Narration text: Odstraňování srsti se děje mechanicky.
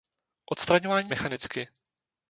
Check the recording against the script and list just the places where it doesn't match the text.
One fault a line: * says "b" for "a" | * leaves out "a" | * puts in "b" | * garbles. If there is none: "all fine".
* leaves out "srsti se děje"